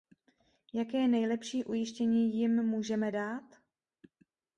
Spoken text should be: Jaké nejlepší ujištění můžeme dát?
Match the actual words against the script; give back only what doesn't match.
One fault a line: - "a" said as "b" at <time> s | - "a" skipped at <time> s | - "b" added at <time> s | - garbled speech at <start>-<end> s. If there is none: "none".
- "jim" added at 2.4 s